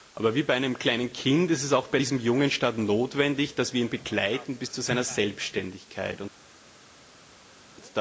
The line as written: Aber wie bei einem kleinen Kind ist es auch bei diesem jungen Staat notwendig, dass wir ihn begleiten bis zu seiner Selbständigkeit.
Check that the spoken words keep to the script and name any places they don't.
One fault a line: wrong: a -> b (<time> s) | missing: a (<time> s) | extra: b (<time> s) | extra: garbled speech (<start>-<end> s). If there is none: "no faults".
no faults